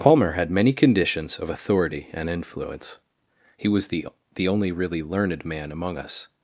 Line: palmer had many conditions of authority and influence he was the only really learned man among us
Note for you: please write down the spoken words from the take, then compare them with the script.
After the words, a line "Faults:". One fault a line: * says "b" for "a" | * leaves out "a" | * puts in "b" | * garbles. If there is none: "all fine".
palmer had many conditions of authority and influence he was the the only really learned man among us
Faults:
* puts in "the"